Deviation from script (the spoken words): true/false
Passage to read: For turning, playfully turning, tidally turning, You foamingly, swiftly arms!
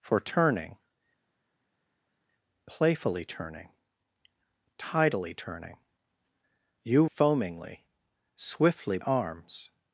false